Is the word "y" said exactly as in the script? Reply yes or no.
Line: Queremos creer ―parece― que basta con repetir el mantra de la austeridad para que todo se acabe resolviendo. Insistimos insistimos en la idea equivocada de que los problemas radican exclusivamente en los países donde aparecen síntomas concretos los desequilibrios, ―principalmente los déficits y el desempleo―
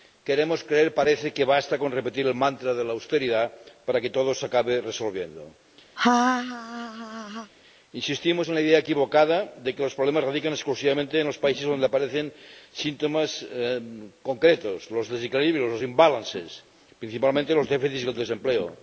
yes